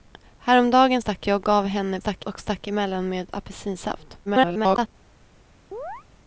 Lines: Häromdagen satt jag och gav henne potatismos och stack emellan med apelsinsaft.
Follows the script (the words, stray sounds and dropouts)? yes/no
no